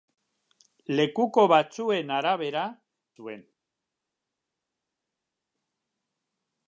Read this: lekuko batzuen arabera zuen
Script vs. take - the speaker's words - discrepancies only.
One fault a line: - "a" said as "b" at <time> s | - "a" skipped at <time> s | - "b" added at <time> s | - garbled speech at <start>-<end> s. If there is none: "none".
none